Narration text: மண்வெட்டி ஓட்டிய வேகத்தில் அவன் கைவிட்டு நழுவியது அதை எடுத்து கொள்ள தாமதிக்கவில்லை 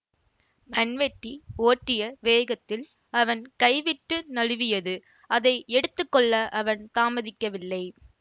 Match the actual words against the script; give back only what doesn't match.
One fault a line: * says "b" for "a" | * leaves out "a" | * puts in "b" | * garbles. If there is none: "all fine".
* puts in "அவன்"